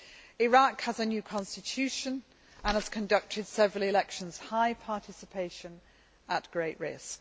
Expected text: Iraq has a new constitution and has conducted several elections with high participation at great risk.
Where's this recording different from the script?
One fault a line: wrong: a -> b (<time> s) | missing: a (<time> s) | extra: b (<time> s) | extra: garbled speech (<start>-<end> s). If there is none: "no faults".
missing: with (4.4 s)